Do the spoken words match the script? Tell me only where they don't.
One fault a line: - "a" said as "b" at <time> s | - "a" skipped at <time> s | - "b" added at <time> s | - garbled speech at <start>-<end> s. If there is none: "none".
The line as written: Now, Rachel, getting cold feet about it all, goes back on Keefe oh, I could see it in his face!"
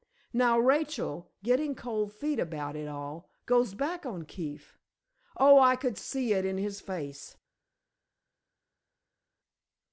none